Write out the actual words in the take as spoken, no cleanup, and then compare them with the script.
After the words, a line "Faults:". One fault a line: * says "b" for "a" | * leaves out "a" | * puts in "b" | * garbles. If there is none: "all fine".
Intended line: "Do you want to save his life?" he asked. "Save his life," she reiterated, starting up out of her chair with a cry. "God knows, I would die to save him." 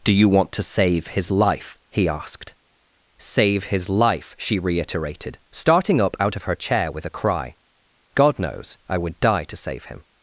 "Do you want to save his life?" he asked. "Save his life," she reiterated, starting up out of her chair with a cry. "God knows, I would die to save him."
Faults:
all fine